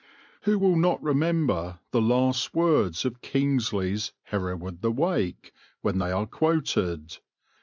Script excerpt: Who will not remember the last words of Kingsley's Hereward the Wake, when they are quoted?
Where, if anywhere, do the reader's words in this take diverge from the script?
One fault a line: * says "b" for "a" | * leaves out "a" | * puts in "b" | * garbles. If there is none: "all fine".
all fine